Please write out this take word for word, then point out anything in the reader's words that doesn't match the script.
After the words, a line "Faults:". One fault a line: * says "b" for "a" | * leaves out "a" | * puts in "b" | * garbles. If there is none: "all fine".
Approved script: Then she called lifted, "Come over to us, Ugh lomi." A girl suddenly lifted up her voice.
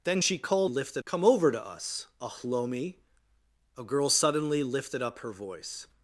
Then she called lifted, "Come over to us, Ugh lomi." A girl suddenly lifted up her voice.
Faults:
all fine